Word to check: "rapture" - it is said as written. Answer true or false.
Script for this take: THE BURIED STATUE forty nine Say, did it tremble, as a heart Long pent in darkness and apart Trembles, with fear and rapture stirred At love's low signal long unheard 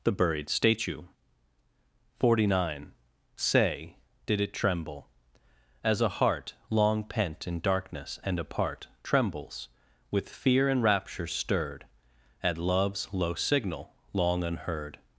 true